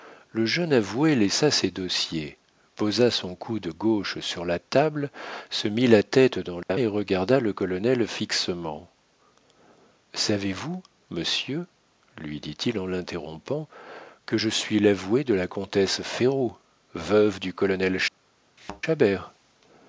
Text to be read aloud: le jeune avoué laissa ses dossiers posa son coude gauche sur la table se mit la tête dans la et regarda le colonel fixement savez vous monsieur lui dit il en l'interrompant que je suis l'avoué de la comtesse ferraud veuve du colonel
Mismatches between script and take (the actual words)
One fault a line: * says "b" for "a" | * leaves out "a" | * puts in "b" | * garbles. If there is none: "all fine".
all fine